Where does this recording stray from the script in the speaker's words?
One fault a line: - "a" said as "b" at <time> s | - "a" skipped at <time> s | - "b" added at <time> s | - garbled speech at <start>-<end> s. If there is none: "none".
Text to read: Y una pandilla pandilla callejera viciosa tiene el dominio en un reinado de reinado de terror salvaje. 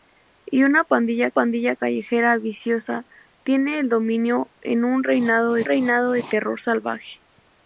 none